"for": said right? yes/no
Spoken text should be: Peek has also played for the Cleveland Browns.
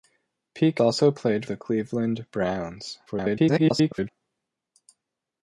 no